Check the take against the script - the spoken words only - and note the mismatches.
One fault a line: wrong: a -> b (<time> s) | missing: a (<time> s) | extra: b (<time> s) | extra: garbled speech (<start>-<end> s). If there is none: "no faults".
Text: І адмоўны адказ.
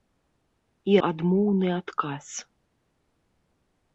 no faults